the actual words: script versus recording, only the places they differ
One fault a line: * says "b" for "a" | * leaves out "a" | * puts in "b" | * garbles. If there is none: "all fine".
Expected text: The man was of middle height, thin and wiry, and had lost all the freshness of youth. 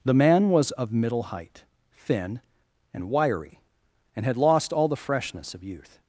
all fine